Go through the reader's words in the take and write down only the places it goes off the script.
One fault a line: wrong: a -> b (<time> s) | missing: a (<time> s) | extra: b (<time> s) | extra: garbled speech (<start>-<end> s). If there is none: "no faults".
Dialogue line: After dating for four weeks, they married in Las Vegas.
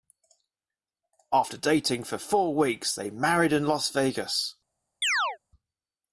no faults